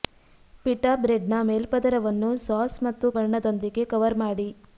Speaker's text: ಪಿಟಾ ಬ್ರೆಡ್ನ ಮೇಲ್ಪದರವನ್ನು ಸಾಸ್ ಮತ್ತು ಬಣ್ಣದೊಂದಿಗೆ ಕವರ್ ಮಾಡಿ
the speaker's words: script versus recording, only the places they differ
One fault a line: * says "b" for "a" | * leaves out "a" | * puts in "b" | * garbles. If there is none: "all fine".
all fine